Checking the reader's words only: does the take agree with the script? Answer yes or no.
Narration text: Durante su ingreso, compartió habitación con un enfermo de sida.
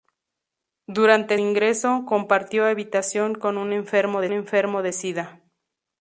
no